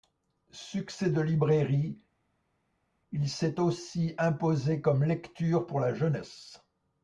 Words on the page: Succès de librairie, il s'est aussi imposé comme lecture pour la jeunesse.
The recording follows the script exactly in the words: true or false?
true